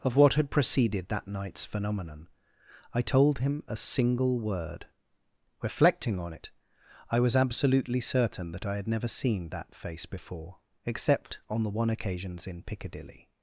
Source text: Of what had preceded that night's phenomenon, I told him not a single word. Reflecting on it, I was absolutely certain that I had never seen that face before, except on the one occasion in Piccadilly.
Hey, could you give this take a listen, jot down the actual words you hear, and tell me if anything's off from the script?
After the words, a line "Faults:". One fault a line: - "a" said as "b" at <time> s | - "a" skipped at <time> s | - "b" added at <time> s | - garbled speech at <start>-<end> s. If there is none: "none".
Of what had preceded that night's phenomenon, I told him a single word. Reflecting on it, I was absolutely certain that I had never seen that face before, except on the one occasions in Piccadilly.
Faults:
- "not" skipped at 3.6 s
- "occasion" said as "occasions" at 11.9 s